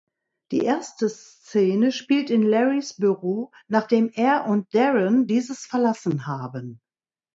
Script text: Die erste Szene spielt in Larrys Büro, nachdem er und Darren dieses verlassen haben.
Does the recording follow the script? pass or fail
pass